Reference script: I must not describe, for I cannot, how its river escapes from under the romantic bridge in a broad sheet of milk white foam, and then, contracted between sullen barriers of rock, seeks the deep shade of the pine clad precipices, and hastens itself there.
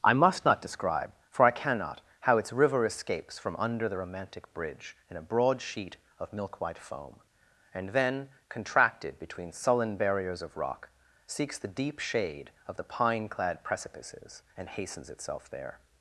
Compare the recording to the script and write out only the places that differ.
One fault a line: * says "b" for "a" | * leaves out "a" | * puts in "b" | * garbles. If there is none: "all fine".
all fine